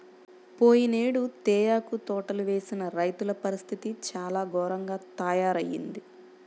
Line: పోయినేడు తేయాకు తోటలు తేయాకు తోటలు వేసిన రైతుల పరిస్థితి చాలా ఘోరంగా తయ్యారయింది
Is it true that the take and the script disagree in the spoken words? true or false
true